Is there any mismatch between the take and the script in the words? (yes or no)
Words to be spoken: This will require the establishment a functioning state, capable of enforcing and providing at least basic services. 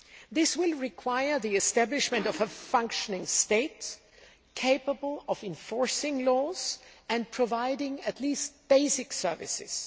yes